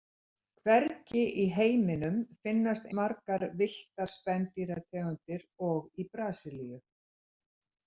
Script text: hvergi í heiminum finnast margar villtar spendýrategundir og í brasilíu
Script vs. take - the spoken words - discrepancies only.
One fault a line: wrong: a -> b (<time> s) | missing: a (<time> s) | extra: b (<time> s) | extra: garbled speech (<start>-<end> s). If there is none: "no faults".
no faults